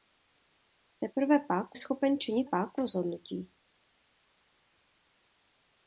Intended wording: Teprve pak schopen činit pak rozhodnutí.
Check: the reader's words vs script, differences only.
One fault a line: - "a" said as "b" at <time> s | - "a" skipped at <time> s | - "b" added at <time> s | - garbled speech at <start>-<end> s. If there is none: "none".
none